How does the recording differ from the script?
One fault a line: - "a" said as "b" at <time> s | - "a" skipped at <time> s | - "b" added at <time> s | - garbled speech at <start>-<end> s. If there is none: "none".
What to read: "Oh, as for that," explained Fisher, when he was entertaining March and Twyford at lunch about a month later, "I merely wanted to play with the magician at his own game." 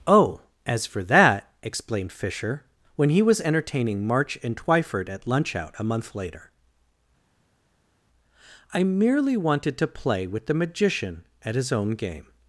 - "about" said as "out" at 5.5 s